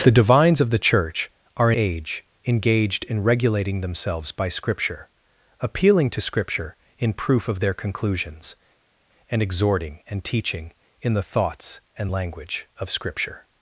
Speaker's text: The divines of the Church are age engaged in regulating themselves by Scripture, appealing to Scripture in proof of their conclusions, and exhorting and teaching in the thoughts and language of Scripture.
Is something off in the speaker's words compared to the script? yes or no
no